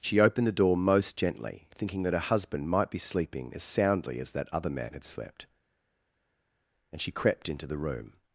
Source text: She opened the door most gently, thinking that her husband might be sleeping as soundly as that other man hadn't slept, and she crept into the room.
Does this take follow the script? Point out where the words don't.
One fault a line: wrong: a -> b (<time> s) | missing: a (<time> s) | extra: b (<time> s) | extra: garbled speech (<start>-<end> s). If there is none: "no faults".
wrong: hadn't -> had (4.9 s)